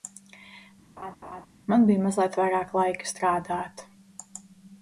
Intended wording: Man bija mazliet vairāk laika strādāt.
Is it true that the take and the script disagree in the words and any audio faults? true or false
true